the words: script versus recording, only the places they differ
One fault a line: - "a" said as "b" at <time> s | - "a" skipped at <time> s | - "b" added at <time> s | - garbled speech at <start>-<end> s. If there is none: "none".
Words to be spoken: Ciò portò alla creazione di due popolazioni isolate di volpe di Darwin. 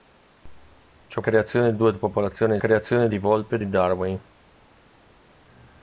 - "portò alla" skipped at 1.2 s
- "isolate" said as "creazione" at 2.6 s